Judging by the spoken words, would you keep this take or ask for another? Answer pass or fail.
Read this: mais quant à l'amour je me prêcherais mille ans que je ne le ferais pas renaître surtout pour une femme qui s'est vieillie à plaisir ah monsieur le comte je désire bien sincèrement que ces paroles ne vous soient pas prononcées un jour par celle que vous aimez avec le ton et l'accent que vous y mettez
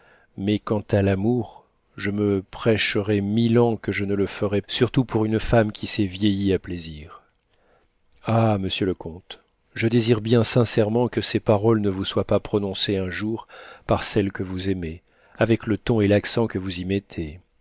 fail